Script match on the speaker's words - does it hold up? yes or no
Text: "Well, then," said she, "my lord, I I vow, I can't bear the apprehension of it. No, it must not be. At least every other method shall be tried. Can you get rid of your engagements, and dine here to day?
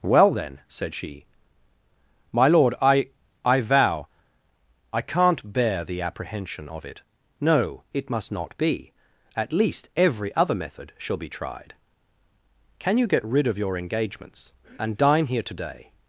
yes